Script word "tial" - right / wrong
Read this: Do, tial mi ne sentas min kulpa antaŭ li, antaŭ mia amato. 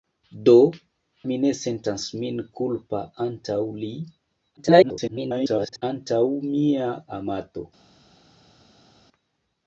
wrong